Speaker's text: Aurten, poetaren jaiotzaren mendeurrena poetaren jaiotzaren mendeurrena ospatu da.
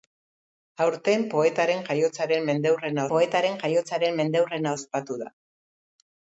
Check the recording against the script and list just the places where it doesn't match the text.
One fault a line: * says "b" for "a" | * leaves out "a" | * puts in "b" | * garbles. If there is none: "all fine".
all fine